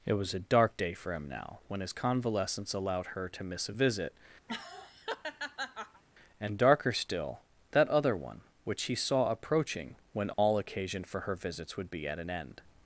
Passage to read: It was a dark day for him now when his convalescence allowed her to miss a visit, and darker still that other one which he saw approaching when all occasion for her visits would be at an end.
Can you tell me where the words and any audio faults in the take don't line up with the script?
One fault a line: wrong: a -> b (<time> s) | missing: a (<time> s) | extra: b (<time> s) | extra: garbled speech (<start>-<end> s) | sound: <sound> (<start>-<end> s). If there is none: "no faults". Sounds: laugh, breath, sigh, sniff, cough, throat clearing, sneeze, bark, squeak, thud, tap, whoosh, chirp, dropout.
sound: laugh (4.5-6.0 s)
sound: dropout (10.3-10.4 s)